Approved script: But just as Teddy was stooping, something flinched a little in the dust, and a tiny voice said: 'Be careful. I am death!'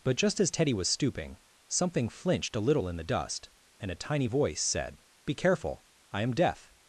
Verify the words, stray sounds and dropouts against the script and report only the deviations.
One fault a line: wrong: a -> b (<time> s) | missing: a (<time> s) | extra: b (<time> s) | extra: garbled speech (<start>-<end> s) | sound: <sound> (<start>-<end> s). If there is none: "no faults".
no faults